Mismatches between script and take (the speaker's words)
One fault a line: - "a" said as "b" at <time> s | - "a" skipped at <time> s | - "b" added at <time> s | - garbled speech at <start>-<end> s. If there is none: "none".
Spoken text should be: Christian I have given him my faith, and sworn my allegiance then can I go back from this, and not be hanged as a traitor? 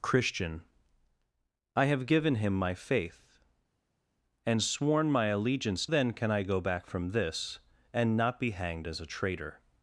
none